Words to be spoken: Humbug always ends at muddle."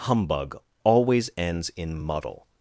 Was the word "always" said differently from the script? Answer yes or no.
no